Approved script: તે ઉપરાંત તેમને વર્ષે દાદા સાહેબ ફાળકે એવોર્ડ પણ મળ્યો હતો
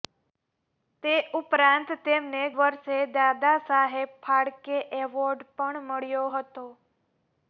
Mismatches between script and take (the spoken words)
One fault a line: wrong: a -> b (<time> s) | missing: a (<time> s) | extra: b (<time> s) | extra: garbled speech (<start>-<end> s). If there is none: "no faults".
no faults